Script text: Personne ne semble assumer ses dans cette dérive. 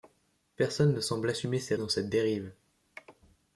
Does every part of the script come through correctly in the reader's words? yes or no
yes